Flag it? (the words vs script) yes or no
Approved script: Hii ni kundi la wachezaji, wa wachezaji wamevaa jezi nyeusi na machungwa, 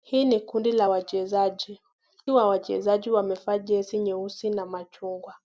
no